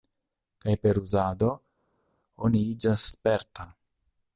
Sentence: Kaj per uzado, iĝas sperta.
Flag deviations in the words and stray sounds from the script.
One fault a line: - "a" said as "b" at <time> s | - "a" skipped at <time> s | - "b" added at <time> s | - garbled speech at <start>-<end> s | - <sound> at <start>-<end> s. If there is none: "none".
- "oni" added at 2.5 s